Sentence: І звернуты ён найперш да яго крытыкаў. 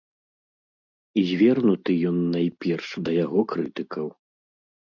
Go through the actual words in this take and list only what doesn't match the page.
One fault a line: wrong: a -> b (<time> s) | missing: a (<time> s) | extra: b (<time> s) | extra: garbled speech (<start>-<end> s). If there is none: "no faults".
no faults